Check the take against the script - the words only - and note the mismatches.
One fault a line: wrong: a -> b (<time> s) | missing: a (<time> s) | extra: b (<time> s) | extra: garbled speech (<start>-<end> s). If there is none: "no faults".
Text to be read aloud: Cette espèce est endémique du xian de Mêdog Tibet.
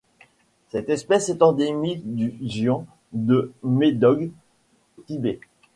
no faults